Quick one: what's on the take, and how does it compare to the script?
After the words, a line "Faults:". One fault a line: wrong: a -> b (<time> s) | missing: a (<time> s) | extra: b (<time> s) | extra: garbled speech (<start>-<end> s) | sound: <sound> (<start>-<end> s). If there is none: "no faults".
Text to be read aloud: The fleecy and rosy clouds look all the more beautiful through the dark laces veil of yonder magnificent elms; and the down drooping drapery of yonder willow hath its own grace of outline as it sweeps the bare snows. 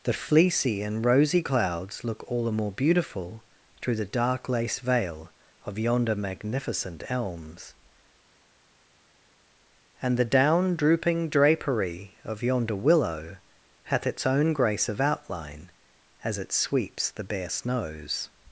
The fleecy and rosy clouds look all the more beautiful through the dark lace veil of yonder magnificent elms; and the down drooping drapery of yonder willow hath its own grace of outline as it sweeps the bare snows.
Faults:
wrong: laces -> lace (4.5 s)